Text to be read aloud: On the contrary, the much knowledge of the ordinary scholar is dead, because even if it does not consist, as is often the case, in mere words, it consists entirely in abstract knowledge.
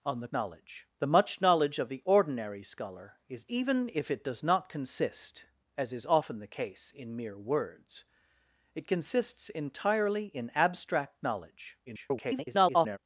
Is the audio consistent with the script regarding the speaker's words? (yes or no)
no